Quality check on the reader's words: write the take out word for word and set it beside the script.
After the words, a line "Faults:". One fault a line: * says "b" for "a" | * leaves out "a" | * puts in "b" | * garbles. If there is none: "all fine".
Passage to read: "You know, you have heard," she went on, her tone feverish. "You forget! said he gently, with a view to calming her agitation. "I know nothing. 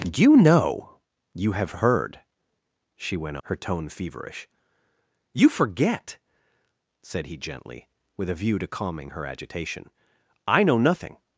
"You know, you have heard," she went her tone feverish. "You forget! said he gently, with a view to calming her agitation. "I know nothing.
Faults:
* leaves out "on"